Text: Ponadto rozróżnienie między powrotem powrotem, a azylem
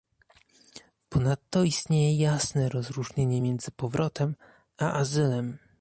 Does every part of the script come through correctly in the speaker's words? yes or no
no